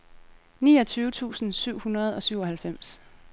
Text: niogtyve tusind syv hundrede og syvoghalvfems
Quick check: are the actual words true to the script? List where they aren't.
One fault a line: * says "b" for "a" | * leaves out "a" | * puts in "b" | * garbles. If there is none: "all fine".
all fine